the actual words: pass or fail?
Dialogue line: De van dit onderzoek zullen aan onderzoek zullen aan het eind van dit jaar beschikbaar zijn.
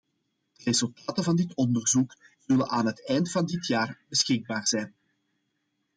fail